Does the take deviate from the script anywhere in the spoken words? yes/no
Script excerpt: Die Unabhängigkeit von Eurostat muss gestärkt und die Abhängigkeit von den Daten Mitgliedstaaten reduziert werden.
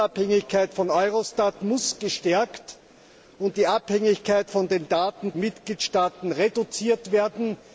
no